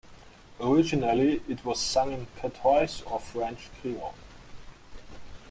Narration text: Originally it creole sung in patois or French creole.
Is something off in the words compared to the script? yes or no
yes